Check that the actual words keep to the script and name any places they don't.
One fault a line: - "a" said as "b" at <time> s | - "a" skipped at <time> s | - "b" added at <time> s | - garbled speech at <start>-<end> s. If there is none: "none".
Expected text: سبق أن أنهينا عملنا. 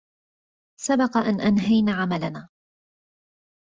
none